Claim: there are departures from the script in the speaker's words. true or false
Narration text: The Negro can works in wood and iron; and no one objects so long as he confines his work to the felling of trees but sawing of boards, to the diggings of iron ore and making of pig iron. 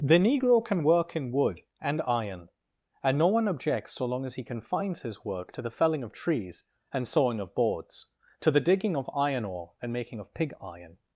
true